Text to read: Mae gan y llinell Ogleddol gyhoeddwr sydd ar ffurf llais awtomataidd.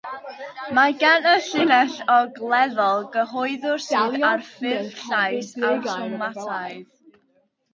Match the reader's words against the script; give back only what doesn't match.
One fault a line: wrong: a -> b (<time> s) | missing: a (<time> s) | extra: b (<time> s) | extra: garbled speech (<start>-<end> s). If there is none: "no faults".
no faults